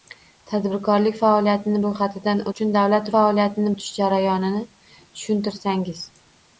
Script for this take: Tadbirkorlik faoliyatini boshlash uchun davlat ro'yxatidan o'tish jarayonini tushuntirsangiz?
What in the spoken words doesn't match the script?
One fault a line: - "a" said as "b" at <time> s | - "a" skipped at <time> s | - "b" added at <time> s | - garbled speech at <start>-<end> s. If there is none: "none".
- "boshlash" said as "ro'yxatidan" at 1.9 s
- "ro'yxatidan" said as "faoliyatini" at 3.1 s